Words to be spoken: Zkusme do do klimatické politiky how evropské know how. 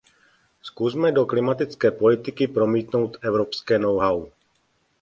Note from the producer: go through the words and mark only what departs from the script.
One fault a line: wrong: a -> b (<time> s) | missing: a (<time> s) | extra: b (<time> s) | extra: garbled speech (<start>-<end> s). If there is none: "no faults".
missing: do (1.2 s)
wrong: how -> promítnout (2.5 s)